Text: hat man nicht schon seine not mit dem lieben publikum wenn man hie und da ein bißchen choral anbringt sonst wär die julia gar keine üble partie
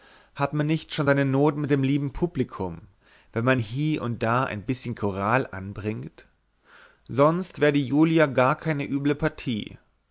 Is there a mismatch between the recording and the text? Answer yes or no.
no